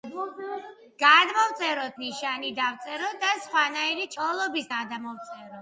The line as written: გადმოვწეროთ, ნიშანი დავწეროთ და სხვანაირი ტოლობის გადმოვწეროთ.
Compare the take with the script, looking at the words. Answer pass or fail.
pass